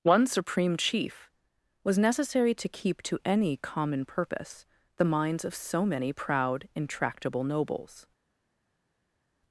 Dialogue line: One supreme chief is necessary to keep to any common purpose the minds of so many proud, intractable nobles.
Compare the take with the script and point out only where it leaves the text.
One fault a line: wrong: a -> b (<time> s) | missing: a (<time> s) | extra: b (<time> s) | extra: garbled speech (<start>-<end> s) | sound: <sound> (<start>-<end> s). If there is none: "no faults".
wrong: is -> was (1.8 s)